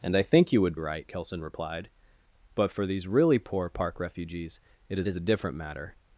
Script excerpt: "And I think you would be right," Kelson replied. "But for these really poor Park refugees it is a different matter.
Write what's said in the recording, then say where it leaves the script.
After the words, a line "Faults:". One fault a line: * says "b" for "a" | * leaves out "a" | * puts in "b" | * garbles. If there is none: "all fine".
"And I think you would right," Kelson replied. "But for these really poor Park refugees it is is a different matter.
Faults:
* leaves out "be"
* puts in "is"